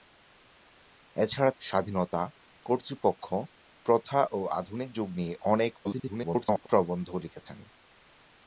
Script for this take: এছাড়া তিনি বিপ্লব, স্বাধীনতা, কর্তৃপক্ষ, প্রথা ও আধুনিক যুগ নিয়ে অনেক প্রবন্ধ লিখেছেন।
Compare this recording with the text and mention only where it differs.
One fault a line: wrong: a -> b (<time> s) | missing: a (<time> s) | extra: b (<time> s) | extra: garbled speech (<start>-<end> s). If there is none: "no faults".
missing: তিনি বিপ্লব (1.5 s)
extra: garbled speech (5.8-6.7 s)